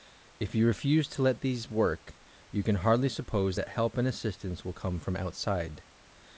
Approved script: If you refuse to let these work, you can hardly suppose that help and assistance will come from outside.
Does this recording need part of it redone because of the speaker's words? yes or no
no